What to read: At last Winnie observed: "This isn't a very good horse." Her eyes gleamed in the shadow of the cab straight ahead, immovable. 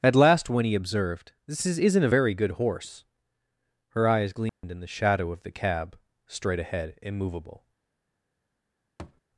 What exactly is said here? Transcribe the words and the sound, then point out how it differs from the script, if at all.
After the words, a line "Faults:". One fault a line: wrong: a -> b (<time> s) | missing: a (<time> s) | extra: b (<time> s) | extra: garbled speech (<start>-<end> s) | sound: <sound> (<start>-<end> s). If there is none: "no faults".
At last Winnie observed: "This is isn't a very good horse." Her eyes gleamed in the shadow of the cab straight ahead, immovable.
Faults:
extra: is (1.6 s)
sound: dropout (4.5-4.6 s)
sound: thud (9.0-9.2 s)